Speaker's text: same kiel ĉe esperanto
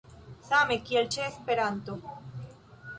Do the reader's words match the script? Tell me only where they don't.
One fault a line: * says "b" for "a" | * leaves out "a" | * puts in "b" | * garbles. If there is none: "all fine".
all fine